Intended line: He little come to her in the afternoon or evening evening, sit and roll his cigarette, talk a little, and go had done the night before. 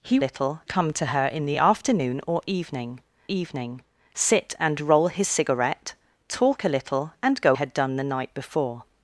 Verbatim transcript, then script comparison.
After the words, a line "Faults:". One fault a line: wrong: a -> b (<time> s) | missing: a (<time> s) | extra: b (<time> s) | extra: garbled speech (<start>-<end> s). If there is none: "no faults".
He little come to her in the afternoon or evening evening, sit and roll his cigarette, talk a little, and go had done the night before.
Faults:
no faults